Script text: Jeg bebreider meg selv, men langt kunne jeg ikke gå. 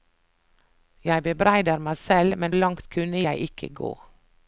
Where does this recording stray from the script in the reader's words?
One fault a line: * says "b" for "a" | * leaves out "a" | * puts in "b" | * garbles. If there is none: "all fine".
all fine